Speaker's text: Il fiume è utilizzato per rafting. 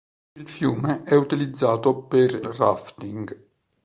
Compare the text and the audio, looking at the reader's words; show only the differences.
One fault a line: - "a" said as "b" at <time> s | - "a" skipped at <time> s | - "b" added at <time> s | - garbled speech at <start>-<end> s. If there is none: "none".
none